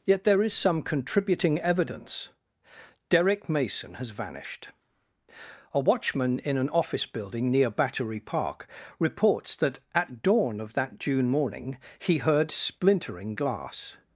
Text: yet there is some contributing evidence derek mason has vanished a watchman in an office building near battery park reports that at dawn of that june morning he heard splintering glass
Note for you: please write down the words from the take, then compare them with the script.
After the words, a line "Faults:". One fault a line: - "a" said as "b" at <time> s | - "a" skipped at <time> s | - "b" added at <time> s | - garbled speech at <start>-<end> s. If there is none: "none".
yet there is some contributing evidence derek mason has vanished a watchman in an office building near battery park reports that at dawn of that june morning he heard splintering glass
Faults:
none